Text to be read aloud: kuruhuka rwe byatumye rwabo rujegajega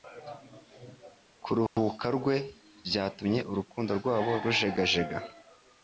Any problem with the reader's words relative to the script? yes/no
yes